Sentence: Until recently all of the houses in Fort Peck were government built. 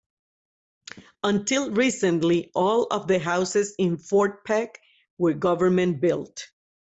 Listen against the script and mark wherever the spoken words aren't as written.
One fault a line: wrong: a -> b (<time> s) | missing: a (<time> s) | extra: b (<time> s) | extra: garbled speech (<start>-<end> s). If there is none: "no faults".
no faults